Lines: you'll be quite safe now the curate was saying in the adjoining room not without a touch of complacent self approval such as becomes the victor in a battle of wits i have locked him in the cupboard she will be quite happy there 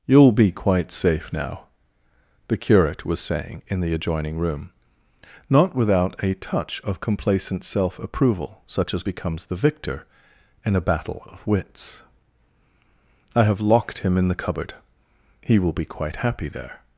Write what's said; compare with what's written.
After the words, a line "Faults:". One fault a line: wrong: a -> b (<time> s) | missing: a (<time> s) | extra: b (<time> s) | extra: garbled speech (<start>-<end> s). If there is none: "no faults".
you'll be quite safe now the curate was saying in the adjoining room not without a touch of complacent self approval such as becomes the victor in a battle of wits i have locked him in the cupboard he will be quite happy there
Faults:
wrong: she -> he (15.4 s)